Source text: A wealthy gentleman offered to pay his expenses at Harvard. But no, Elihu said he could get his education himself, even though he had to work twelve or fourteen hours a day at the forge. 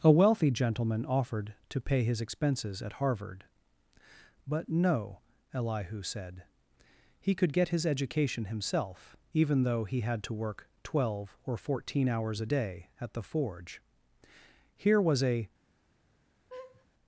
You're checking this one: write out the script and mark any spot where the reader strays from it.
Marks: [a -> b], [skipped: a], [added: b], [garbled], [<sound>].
A wealthy gentleman offered to pay his expenses at Harvard. But no, Elihu said he could get his education himself, even though he had to work twelve or fourteen hours a day at the forge. [added: Here was a] [laugh]